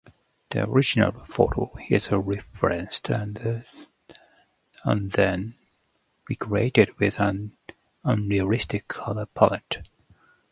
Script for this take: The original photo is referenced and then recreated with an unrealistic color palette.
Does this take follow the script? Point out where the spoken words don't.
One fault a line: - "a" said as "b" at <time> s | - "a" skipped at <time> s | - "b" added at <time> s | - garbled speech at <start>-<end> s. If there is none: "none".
none